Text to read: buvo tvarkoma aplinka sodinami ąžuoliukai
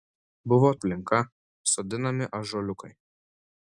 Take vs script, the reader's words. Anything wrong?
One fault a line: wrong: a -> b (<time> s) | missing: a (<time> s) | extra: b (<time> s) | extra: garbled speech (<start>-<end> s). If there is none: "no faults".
missing: tvarkoma (0.7 s)